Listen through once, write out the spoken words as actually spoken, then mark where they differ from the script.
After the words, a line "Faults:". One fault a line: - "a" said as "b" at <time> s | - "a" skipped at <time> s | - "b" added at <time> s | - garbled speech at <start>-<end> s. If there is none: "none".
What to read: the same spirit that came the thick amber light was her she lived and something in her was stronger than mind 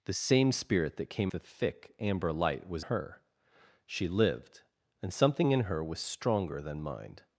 the same spirit that came the thick amber light was her she lived and something in her was stronger than mind
Faults:
none